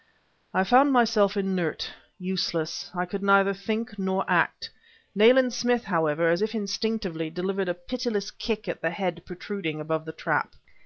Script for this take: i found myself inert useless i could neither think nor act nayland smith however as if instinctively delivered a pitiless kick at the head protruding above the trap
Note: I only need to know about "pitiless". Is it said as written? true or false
true